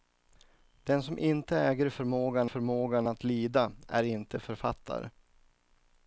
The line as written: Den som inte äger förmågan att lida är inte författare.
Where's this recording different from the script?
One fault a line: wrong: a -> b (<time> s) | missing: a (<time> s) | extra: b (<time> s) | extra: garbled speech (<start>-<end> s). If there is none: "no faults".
extra: förmågan (2.4 s)